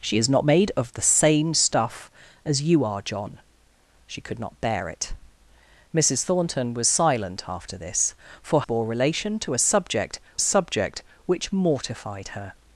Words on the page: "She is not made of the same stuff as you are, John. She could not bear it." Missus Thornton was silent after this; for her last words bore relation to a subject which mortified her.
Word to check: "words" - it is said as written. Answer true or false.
false